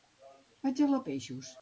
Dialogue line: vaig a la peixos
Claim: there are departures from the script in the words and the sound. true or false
false